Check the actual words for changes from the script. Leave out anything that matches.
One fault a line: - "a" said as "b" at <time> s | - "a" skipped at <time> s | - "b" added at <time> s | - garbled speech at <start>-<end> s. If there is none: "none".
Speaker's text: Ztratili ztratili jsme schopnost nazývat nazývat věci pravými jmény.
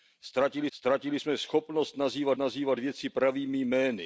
none